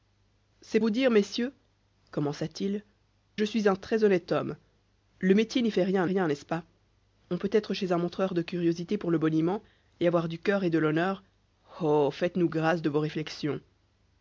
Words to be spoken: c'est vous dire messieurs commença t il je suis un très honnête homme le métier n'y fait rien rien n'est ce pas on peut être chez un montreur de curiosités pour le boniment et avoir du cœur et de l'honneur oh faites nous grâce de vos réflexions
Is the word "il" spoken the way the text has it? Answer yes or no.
yes